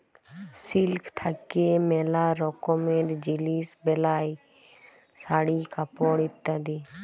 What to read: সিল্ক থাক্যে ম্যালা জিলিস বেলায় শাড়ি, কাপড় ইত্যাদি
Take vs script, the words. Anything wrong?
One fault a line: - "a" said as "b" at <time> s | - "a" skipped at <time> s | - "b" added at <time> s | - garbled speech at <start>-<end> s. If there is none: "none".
- "রকমের" added at 2.4 s